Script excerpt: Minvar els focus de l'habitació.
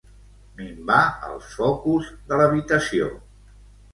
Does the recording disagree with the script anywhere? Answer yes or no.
no